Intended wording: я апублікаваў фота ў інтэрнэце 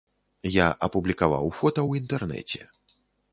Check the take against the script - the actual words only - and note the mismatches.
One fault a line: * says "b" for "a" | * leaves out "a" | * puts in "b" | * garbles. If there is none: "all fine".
all fine